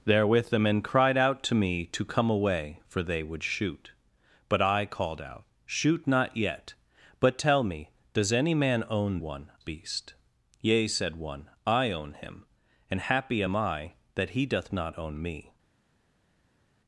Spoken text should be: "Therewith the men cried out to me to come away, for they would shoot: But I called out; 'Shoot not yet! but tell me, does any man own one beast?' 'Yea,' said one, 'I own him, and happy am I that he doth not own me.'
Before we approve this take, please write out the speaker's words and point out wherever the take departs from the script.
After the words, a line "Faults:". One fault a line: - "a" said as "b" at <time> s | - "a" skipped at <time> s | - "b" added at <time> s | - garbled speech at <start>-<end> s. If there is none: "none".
"Therewith the men cried out to me to come away, for they would shoot: But I called out; 'Shoot not yet! but tell me, does any man own one beast?' 'Yea,' said one, 'I own him, and happy am I that he doth not own me.'
Faults:
none